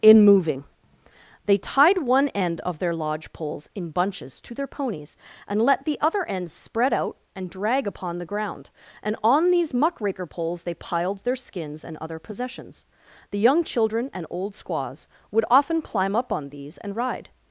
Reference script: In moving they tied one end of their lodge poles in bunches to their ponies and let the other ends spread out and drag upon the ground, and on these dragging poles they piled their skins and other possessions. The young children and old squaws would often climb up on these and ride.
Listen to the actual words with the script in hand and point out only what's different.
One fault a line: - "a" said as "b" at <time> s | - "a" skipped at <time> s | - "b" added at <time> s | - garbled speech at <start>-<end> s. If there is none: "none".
- "dragging" said as "muckraker" at 9.7 s